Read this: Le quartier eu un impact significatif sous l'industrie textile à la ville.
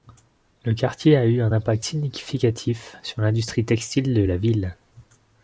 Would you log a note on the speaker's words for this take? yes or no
yes